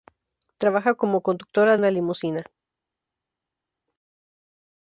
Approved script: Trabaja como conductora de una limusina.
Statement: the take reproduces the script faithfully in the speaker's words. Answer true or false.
false